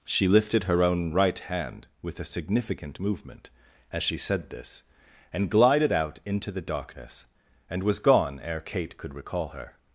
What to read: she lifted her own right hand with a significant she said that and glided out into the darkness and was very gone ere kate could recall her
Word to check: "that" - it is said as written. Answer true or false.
false